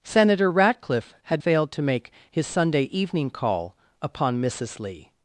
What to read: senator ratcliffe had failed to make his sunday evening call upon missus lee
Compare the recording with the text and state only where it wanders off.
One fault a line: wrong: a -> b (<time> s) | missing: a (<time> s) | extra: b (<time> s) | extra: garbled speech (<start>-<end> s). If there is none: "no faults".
no faults